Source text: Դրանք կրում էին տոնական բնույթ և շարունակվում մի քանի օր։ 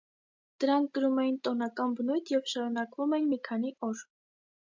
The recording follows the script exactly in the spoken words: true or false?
false